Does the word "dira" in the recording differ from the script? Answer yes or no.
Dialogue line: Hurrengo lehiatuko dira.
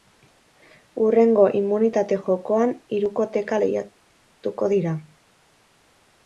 no